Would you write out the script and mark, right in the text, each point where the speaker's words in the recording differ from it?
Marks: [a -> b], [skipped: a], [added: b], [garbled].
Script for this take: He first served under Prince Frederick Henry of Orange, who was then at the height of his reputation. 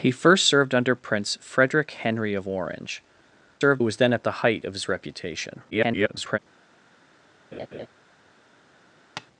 He first served under Prince Frederick Henry of Orange, [who -> served] was then at the height of his reputation. [garbled]